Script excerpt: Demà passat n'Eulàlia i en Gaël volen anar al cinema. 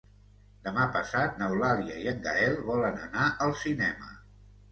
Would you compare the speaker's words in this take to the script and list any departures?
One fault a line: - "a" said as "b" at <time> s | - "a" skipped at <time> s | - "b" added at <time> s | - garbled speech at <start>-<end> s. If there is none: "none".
none